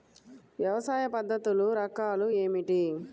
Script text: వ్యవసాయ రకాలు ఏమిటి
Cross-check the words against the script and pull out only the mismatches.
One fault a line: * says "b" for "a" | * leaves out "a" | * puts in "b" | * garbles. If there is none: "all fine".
* puts in "పద్ధతులు"